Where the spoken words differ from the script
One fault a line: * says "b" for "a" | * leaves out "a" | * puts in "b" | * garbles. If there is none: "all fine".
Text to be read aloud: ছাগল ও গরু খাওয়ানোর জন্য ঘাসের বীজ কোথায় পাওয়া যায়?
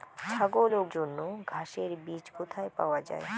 * leaves out "গরু খাওয়ানোর"